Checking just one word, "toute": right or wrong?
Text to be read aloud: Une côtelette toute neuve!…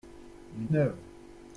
wrong